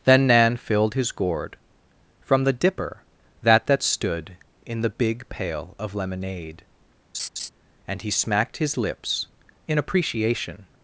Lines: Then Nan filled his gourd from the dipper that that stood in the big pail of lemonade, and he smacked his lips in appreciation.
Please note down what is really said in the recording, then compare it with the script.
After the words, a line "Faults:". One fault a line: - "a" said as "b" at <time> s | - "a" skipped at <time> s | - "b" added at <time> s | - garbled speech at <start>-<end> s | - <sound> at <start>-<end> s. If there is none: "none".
Then Nan filled his gourd from the dipper that that stood in the big pail of lemonade, and he smacked his lips in appreciation.
Faults:
- laugh at 7.1-7.5 s